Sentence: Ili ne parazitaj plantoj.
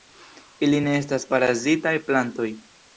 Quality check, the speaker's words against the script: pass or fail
fail